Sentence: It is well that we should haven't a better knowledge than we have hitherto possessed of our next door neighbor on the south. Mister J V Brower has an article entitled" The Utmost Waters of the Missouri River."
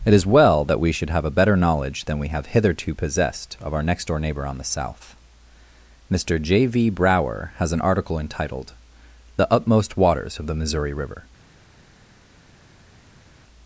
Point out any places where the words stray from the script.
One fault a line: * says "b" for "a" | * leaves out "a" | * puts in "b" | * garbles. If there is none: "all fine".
* says "have" for "haven't"